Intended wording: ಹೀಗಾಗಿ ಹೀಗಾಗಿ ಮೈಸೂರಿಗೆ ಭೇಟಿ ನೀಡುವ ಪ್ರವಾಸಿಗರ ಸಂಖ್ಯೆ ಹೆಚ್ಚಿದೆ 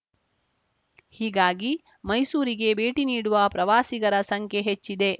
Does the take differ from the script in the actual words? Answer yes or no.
yes